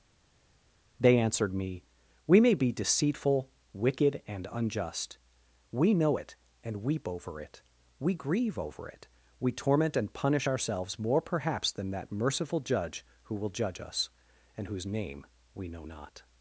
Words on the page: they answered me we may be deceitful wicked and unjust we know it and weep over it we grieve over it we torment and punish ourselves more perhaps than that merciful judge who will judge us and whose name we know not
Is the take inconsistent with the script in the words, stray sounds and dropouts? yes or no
no